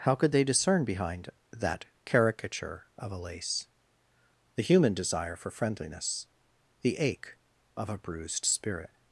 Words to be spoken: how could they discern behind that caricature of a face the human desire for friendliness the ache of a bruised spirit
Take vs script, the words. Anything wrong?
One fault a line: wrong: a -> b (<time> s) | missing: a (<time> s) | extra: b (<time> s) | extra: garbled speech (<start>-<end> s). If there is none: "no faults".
wrong: face -> lace (3.2 s)